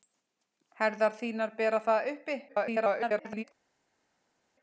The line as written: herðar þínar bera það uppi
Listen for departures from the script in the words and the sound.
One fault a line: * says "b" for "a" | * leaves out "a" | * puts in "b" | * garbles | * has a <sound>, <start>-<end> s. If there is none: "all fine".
* garbles